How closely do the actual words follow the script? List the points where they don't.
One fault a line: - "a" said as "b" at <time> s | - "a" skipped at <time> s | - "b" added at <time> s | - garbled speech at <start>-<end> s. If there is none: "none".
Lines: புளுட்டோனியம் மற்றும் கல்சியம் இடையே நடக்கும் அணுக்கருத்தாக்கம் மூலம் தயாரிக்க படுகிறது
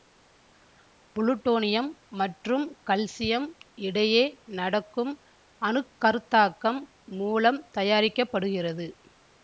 none